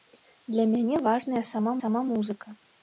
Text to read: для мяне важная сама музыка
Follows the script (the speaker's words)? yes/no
no